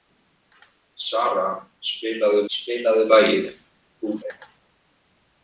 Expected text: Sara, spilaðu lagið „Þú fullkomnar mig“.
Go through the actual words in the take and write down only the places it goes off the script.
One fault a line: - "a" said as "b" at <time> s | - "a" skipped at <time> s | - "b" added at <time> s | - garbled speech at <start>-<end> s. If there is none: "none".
- "spilaðu" added at 2.5 s
- "fullkomnar" skipped at 4.1 s